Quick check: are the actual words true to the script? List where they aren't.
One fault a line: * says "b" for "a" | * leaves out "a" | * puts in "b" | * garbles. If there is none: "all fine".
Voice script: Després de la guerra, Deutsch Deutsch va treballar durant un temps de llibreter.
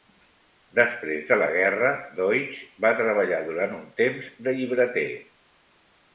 * leaves out "Deutsch"